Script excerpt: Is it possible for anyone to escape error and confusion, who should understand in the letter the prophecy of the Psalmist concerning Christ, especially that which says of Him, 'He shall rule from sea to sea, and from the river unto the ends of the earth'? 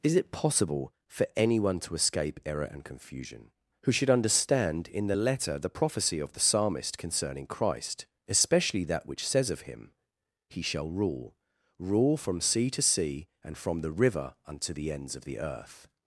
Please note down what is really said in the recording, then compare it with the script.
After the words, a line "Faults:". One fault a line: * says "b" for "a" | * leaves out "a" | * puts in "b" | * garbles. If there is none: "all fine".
Is it possible for anyone to escape error and confusion, who should understand in the letter the prophecy of the Psalmist concerning Christ, especially that which says of Him, 'He shall rule rule from sea to sea, and from the river unto the ends of the earth'?
Faults:
* puts in "rule"